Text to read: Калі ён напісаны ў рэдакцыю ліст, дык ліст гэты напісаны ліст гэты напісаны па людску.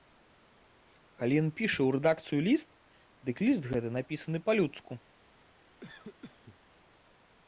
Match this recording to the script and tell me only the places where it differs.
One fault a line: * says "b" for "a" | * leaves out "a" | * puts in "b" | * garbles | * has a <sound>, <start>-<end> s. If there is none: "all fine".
* says "піша" for "напісаны"
* leaves out "ліст гэты напісаны"
* has a cough, 5.8-6.6 s